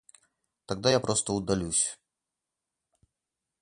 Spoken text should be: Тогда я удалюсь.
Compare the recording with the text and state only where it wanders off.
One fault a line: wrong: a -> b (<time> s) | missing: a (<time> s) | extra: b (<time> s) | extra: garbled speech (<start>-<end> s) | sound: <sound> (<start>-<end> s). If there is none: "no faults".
extra: просто (1.0 s)